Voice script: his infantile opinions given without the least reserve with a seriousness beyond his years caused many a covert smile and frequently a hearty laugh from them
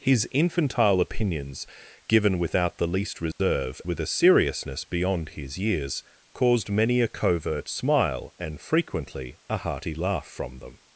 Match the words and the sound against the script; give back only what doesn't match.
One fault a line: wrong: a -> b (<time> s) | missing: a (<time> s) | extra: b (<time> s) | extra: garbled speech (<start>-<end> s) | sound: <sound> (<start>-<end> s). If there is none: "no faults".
sound: dropout (3.3-3.4 s)